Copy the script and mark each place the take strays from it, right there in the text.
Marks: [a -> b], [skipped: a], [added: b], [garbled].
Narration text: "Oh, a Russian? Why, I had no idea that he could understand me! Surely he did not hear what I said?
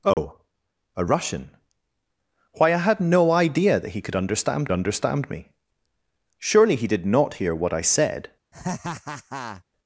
"Oh, a Russian? Why, I had no idea that he could understand [added: understand] me! Surely he did not hear what I said?